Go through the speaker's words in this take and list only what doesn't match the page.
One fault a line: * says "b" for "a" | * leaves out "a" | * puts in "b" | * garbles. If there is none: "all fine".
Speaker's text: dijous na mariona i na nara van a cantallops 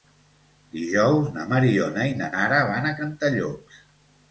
all fine